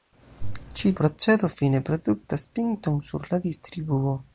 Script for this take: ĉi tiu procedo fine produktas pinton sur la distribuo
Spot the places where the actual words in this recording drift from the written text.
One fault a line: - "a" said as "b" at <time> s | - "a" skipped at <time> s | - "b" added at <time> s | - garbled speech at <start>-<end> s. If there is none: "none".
- "tiu" skipped at 0.9 s